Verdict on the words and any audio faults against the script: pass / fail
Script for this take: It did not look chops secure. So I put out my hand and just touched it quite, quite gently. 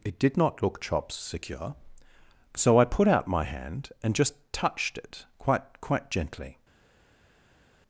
pass